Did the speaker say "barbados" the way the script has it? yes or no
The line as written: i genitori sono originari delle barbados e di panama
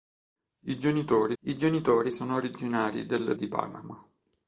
no